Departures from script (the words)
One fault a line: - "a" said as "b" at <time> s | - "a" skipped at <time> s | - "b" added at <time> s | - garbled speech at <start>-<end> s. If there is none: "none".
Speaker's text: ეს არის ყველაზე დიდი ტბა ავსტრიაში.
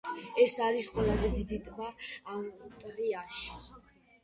none